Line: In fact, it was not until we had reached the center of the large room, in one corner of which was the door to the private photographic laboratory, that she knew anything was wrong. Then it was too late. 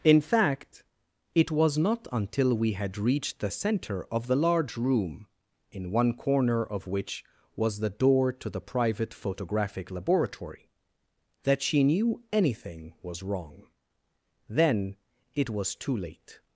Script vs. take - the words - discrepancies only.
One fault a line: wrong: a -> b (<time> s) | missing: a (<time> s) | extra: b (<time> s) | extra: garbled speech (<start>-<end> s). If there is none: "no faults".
no faults